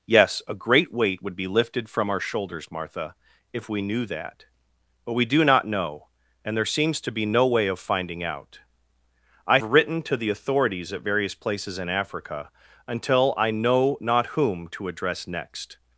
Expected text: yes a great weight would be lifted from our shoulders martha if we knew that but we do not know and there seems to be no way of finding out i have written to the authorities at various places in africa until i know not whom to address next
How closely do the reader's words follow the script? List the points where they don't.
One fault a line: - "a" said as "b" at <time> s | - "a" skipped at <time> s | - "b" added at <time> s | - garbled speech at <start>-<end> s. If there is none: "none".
- "have" skipped at 9.6 s